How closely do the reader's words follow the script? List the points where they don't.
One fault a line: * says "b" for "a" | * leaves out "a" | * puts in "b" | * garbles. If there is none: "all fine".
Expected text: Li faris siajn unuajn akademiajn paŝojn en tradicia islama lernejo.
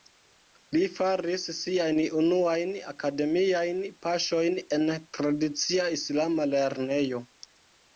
all fine